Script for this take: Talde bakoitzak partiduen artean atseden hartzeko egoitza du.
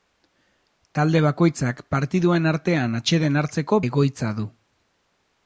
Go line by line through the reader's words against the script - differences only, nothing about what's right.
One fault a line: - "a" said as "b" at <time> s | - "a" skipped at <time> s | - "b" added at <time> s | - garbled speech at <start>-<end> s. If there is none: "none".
none